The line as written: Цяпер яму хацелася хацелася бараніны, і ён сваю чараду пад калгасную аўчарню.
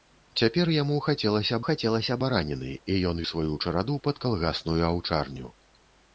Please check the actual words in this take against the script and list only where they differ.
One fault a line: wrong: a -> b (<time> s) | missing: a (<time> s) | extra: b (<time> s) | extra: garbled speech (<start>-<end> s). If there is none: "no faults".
no faults